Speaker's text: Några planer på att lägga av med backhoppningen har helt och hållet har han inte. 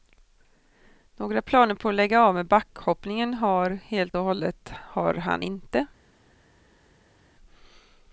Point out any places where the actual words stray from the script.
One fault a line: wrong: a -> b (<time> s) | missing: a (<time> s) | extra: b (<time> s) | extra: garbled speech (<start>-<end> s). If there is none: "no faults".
no faults